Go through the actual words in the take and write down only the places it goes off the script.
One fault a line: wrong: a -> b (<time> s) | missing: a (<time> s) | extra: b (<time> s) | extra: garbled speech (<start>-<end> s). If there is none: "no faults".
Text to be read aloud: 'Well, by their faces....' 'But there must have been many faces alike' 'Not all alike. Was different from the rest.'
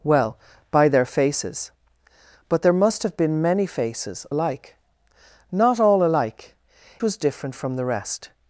no faults